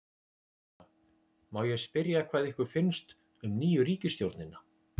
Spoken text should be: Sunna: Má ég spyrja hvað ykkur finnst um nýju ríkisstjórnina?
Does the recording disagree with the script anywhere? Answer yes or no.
no